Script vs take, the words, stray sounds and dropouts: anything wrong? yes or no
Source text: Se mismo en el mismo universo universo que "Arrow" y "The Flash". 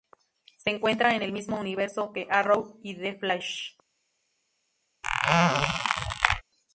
yes